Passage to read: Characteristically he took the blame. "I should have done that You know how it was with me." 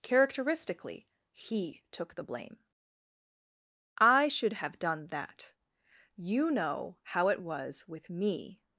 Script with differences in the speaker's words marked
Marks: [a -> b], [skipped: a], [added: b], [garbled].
Characteristically he took the blame. "I should have done that You know how it was with me."